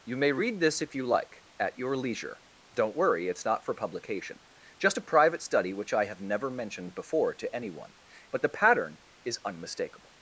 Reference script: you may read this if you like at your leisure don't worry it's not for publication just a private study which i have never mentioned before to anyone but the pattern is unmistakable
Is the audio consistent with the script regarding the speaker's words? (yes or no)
yes